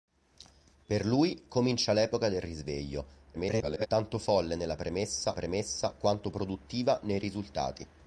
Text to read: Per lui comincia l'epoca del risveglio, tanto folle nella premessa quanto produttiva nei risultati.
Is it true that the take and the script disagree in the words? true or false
true